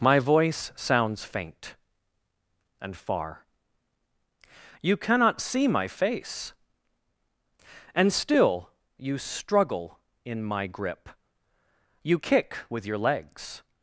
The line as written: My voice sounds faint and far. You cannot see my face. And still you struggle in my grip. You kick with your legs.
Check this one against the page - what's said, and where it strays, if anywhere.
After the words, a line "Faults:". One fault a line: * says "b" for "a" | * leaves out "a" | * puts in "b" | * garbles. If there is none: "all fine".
My voice sounds faint and far. You cannot see my face. And still you struggle in my grip. You kick with your legs.
Faults:
all fine